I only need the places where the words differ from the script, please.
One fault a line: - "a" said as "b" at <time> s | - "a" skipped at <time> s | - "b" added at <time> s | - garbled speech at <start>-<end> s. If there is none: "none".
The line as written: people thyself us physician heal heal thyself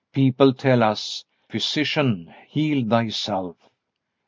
- "thyself" said as "tell" at 0.5 s
- "heal" skipped at 2.8 s